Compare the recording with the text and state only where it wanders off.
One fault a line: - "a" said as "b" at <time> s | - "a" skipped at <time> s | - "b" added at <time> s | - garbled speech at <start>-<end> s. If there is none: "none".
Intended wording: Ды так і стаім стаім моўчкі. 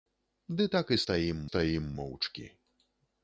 none